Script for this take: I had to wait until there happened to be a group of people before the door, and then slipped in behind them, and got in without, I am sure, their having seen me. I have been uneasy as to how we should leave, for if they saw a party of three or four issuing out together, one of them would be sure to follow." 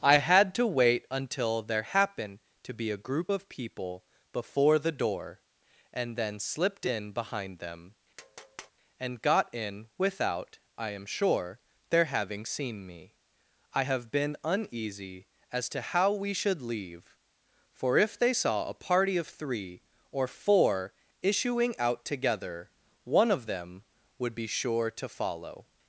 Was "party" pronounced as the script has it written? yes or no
yes